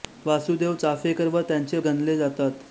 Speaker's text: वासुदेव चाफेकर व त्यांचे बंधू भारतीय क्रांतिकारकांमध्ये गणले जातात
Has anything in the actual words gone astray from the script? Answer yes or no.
yes